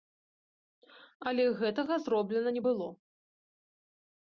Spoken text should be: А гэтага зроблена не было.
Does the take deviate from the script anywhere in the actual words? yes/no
yes